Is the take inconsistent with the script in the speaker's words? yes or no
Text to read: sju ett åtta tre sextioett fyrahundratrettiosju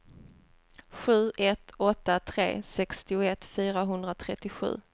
no